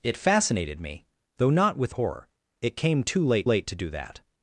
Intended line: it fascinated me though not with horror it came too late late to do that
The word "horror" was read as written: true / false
true